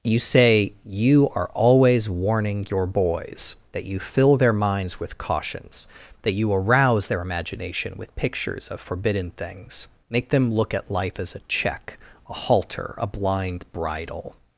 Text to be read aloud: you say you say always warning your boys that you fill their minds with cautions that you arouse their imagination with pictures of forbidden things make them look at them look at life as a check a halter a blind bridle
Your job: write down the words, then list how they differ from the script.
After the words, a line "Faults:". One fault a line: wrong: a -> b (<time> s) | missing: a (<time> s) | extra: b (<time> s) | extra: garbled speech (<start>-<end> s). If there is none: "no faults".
you say you are always warning your boys that you fill their minds with cautions that you arouse their imagination with pictures of forbidden things make them look at life as a check a halter a blind bridle
Faults:
wrong: say -> are (1.4 s)
missing: them look at (10.9 s)